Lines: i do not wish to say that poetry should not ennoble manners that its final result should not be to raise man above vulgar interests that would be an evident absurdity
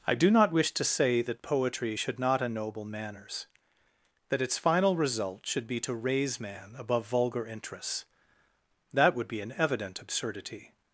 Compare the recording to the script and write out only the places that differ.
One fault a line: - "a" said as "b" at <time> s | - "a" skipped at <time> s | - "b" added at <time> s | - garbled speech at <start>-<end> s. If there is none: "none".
- "not" skipped at 5.7 s